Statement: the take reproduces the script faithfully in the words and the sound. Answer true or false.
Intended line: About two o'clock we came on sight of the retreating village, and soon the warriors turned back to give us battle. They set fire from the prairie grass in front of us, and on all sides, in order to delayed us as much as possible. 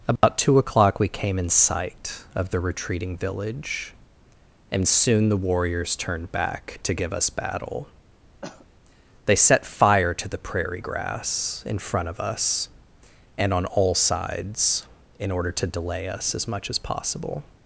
false